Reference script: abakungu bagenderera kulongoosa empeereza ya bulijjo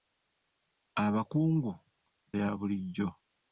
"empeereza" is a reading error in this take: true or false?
true